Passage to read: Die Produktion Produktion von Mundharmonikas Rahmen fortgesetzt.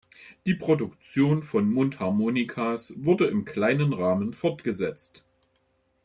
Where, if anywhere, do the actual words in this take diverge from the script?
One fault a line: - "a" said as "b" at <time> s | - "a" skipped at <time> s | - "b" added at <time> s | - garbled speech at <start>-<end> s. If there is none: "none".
- "Produktion" skipped at 1.4 s
- "wurde im kleinen" added at 3.0 s